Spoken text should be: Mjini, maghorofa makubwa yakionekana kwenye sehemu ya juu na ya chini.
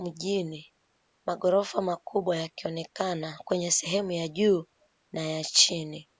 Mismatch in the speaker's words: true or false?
false